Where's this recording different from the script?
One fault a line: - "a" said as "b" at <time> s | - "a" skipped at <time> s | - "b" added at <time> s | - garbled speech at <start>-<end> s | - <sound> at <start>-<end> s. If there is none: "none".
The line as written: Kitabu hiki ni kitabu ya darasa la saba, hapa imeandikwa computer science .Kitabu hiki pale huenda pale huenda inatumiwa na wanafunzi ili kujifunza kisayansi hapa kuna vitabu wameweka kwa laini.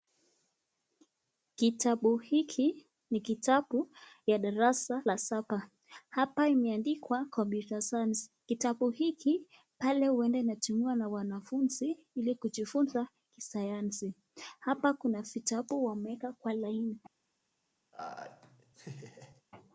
- "pale huenda" skipped at 10.4 s
- laugh at 17.9-19.4 s